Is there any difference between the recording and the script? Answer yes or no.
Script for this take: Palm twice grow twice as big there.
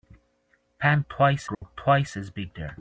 no